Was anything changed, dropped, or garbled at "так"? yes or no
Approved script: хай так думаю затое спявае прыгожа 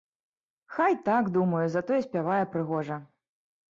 no